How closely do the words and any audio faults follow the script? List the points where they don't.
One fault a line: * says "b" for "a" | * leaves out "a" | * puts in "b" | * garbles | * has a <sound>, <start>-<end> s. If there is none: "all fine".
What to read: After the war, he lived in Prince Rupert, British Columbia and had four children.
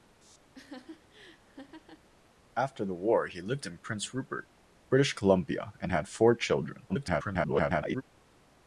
* has a laugh, 0.5-2.1 s
* garbles